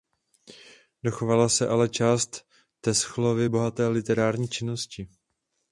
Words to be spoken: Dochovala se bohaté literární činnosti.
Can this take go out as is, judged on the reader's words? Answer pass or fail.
fail